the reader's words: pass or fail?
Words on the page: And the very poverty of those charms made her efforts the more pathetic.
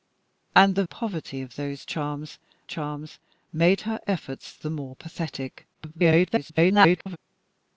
fail